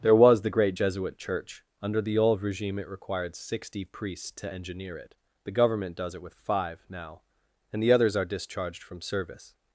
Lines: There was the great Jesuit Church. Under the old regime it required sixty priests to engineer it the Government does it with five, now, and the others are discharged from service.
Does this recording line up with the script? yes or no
yes